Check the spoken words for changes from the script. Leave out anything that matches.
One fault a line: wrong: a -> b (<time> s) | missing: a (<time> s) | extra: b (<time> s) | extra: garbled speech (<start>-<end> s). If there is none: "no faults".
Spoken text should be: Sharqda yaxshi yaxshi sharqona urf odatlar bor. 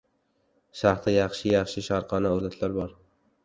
missing: urf (2.4 s)